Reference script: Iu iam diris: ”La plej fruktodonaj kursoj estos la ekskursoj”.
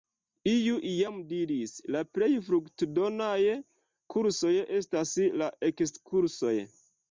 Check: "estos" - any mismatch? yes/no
yes